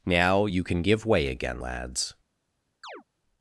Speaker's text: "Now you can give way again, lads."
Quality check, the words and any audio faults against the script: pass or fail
fail